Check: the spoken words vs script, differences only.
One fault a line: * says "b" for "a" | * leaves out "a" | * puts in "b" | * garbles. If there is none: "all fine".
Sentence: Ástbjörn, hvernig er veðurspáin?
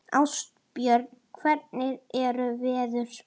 all fine